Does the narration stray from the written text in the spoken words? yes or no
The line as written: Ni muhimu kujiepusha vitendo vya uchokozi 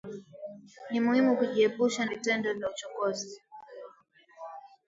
no